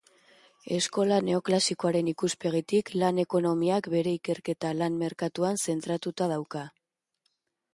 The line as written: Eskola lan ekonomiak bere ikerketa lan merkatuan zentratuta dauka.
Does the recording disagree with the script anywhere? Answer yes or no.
yes